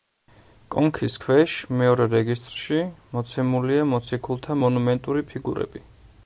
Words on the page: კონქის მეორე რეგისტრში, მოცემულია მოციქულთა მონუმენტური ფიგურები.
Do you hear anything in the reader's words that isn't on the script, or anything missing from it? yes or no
yes